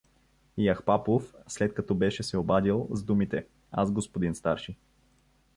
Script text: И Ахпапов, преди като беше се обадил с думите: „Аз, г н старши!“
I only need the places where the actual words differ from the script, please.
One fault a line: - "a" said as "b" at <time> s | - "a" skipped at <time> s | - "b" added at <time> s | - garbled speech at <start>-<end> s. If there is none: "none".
- "преди" said as "след" at 1.5 s